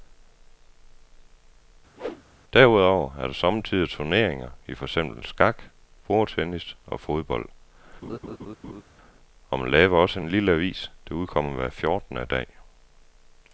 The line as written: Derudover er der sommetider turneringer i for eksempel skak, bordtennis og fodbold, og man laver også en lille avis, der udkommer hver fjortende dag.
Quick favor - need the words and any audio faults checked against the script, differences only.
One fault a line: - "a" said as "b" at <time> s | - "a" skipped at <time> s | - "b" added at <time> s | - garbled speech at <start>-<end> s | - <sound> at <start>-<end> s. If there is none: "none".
- whoosh at 2.0-2.2 s
- laugh at 8.0-8.8 s